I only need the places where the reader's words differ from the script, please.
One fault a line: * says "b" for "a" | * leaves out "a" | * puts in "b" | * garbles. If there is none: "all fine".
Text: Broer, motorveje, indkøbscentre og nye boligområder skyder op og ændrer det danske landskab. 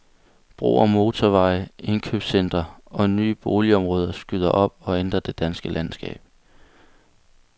all fine